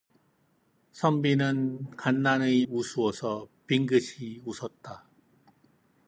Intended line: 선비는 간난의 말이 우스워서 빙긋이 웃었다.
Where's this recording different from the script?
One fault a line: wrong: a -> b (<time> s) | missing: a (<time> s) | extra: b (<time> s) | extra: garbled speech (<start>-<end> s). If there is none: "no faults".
missing: 말이 (2.7 s)